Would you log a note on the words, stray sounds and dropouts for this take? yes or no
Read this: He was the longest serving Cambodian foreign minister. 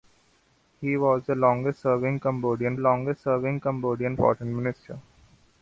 yes